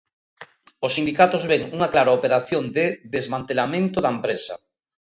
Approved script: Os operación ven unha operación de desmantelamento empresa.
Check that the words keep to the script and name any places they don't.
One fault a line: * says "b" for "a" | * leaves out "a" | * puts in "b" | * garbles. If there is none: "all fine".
* says "sindicatos" for "operación"
* puts in "clara"
* puts in "da"